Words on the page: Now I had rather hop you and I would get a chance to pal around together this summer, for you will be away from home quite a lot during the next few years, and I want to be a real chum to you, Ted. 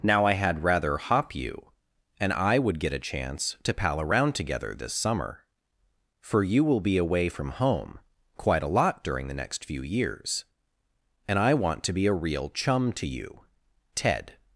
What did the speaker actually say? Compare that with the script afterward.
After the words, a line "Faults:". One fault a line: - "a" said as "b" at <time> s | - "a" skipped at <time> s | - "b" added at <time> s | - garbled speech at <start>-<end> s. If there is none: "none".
Now I had rather hop you and I would get a chance to pal around together this summer, for you will be away from home quite a lot during the next few years, and I want to be a real chum to you, Ted.
Faults:
none